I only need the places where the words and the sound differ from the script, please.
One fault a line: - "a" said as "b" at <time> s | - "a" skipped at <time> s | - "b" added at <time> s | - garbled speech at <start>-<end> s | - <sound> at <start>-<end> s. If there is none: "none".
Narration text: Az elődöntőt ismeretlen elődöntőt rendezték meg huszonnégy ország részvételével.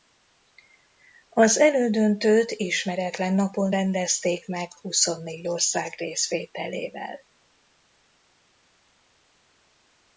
- "elődöntőt" said as "napon" at 3.3 s